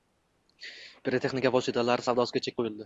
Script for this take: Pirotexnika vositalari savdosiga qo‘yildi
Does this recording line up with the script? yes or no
no